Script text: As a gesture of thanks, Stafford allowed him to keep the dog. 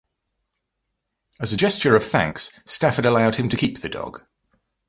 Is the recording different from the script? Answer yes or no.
no